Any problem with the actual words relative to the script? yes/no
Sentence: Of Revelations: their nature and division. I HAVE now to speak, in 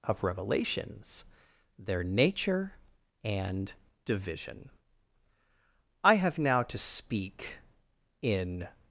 no